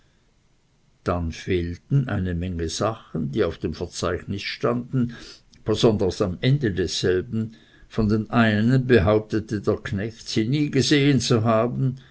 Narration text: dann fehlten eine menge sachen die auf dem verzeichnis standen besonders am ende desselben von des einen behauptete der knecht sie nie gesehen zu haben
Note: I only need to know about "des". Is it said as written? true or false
false